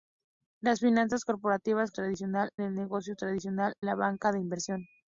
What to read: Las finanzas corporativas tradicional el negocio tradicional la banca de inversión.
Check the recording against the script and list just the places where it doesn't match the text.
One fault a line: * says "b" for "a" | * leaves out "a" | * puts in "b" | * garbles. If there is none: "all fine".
all fine